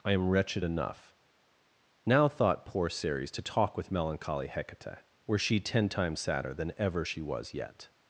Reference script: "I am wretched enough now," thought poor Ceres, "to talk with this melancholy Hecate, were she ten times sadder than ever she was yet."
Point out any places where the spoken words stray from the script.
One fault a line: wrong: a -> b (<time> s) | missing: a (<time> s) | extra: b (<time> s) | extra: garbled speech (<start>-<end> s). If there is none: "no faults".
missing: this (3.9 s)